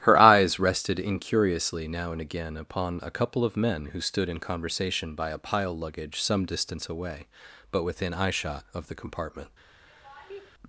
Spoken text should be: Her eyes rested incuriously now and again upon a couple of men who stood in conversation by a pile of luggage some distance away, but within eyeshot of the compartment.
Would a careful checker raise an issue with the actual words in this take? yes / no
yes